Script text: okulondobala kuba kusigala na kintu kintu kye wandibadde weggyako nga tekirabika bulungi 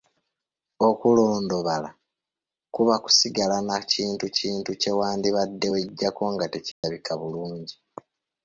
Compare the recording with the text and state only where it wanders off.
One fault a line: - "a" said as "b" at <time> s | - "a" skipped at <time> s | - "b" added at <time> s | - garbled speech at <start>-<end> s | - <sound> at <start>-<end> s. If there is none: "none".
- dropout at 6.7-6.8 s